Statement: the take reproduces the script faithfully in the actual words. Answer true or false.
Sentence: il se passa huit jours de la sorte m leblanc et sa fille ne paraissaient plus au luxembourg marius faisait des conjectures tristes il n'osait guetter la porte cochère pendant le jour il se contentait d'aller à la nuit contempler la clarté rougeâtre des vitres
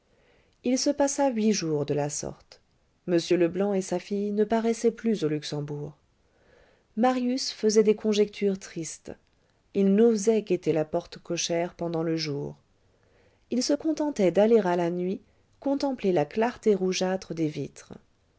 true